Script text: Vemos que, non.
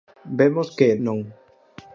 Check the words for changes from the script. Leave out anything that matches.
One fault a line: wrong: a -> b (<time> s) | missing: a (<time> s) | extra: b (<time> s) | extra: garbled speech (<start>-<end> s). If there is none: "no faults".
no faults